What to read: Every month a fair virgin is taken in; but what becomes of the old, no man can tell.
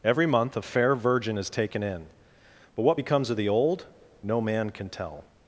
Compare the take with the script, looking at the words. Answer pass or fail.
pass